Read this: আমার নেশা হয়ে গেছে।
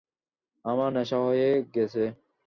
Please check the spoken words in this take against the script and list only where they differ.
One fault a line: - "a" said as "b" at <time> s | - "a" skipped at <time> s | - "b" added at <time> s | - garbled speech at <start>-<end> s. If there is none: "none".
none